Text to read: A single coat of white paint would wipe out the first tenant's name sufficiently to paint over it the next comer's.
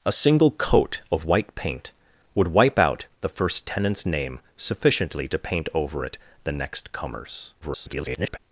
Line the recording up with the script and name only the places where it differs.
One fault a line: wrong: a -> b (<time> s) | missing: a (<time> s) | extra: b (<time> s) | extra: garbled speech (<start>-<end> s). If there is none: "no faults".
extra: garbled speech (7.6-8.4 s)